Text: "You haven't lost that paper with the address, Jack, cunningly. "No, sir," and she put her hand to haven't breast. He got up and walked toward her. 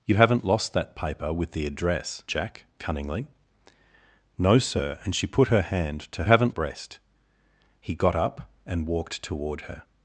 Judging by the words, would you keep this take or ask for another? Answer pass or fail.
pass